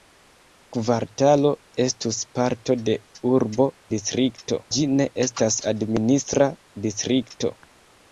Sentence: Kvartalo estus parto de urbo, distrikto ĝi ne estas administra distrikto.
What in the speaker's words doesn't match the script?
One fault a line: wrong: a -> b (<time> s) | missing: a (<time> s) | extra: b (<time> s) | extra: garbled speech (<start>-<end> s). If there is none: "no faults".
no faults